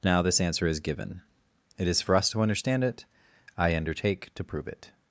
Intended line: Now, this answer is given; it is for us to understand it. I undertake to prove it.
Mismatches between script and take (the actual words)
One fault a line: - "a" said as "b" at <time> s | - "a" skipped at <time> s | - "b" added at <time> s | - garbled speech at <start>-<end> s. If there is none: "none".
none